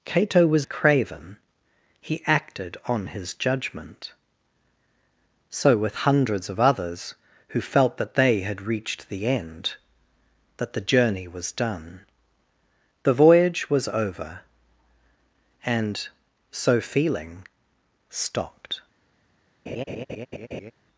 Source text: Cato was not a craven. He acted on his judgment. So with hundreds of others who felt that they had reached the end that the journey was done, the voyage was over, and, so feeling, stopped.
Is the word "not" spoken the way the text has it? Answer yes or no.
no